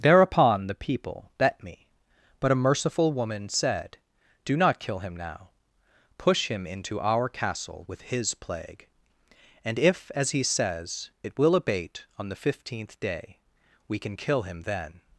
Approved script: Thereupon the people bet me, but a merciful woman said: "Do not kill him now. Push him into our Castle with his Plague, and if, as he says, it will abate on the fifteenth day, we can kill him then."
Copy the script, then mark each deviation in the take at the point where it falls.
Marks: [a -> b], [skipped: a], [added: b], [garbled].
Thereupon the people bet me, but a merciful woman said: "Do not kill him now. Push him into our Castle with his Plague, and if, as he says, it will abate on the fifteenth day, we can kill him then."